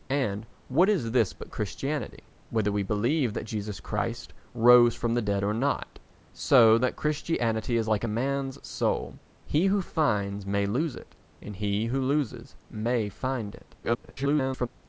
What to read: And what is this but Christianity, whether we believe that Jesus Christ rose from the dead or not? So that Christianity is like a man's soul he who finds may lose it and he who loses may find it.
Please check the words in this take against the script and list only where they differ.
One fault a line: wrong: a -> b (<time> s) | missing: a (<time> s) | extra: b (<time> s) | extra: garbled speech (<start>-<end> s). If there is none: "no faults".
extra: garbled speech (13.8-14.7 s)